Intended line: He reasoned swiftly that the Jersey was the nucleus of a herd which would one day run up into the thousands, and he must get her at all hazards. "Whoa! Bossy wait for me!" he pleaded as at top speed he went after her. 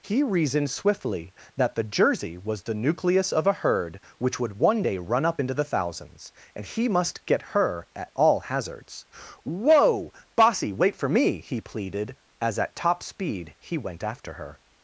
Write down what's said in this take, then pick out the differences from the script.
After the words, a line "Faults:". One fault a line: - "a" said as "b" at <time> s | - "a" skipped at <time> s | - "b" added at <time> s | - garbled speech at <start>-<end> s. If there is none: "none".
He reasoned swiftly that the Jersey was the nucleus of a herd which would one day run up into the thousands, and he must get her at all hazards. "Whoa! Bossy wait for me!" he pleaded as at top speed he went after her.
Faults:
none